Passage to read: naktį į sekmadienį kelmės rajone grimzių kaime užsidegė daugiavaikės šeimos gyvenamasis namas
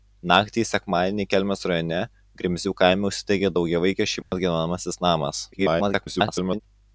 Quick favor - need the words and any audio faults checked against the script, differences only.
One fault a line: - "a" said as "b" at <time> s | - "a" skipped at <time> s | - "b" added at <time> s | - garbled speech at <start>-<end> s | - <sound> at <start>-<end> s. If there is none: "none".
- dropout at 4.2-4.3 s
- garbled speech at 5.5-6.6 s